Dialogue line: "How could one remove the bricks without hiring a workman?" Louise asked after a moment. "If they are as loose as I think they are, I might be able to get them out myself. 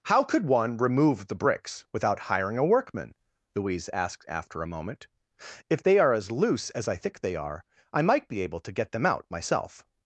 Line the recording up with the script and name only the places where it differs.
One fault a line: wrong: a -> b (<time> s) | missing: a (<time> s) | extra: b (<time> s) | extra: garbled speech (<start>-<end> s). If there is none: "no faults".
no faults